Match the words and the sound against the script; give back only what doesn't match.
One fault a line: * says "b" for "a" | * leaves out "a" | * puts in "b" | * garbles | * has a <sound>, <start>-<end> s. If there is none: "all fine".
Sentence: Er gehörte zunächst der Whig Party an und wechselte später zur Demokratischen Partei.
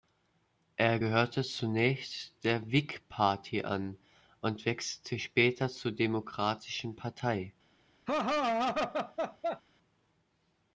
* has a laugh, 8.1-9.6 s